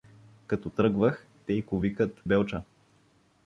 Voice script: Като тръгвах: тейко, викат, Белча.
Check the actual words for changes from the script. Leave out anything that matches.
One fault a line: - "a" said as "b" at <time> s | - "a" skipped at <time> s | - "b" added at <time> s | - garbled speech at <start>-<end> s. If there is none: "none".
none